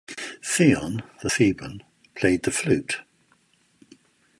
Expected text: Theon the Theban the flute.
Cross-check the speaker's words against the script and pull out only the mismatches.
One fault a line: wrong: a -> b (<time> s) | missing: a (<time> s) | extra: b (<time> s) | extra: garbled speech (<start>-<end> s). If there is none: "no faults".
extra: played (2.2 s)